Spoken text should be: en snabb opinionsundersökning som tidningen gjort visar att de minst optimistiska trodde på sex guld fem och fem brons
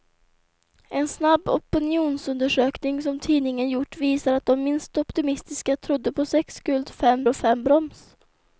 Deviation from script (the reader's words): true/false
false